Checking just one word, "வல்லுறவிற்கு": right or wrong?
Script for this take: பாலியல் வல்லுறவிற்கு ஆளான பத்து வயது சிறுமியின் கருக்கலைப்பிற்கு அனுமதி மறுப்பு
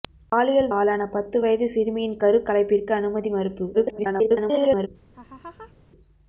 wrong